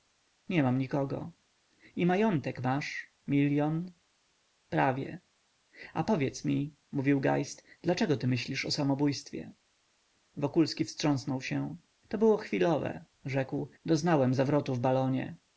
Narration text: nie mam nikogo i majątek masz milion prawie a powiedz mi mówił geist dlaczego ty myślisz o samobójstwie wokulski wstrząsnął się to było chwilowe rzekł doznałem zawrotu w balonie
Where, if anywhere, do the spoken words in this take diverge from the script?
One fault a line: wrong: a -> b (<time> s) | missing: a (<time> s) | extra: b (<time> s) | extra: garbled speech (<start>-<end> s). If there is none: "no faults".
no faults